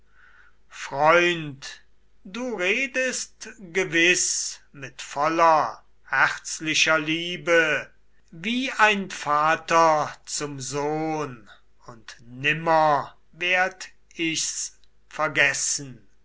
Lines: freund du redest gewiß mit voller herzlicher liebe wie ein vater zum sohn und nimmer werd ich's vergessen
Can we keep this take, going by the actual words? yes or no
yes